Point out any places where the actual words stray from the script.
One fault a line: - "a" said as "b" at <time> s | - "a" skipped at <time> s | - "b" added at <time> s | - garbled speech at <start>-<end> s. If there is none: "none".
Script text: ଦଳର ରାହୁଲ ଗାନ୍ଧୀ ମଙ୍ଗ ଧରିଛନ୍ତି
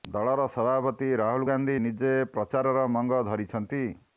- "ସଭାପତି" added at 0.5 s
- "ନିଜେ ପ୍ରଚାରର" added at 1.8 s